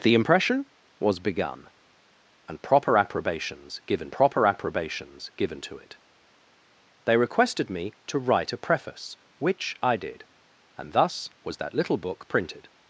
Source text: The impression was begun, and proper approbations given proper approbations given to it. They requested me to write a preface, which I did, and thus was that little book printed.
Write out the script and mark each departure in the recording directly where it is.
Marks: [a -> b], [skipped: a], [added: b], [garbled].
The impression was begun, and proper approbations given proper approbations given to it. They requested me to write a preface, which I did, and thus was that little book printed.